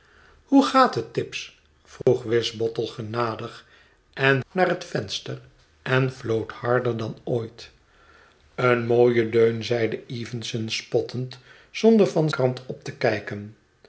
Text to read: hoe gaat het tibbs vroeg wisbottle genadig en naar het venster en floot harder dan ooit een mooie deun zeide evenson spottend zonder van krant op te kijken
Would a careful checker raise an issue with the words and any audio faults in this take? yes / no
yes